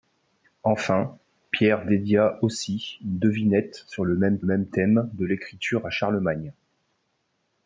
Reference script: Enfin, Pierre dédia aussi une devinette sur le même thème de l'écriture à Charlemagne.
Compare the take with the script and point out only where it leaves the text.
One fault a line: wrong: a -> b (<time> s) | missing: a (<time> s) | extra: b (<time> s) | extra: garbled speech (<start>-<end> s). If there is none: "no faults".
extra: même (4.4 s)